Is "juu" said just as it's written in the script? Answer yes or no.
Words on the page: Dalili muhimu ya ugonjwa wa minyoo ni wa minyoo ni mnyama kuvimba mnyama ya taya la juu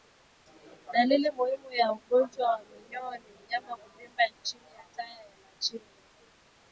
no